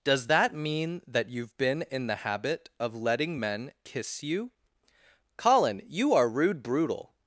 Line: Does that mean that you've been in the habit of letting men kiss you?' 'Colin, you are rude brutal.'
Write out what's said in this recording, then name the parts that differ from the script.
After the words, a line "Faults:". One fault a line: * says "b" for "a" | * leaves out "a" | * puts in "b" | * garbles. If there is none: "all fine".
Does that mean that you've been in the habit of letting men kiss you?' 'Colin, you are rude brutal.'
Faults:
all fine